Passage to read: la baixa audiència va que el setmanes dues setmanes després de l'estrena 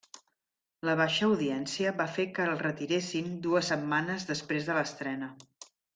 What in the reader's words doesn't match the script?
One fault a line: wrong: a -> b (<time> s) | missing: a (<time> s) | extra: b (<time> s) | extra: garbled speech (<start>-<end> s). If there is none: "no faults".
extra: fer (2.1 s)
wrong: setmanes -> retiressin (2.6 s)